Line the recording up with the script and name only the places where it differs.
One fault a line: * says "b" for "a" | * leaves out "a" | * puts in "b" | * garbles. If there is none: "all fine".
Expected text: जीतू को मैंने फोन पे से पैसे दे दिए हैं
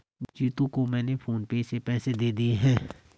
all fine